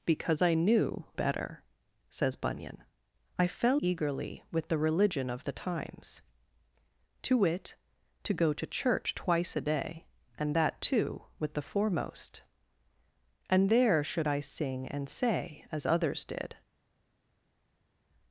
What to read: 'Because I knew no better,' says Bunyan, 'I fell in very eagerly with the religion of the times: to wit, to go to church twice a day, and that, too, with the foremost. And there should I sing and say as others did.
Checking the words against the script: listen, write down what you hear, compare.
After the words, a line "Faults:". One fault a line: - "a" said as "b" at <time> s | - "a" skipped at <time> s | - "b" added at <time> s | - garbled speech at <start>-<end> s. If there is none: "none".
'Because I knew better,' says Bunyan, 'I fell eagerly with the religion of the times: to wit, to go to church twice a day, and that, too, with the foremost. And there should I sing and say as others did.
Faults:
- "no" skipped at 1.1 s
- "in very" skipped at 3.8 s